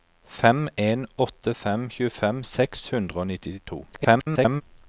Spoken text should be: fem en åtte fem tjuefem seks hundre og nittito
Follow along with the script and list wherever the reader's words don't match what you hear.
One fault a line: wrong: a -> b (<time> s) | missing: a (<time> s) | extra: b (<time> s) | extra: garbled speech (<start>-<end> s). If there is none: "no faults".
extra: garbled speech (3.9-4.6 s)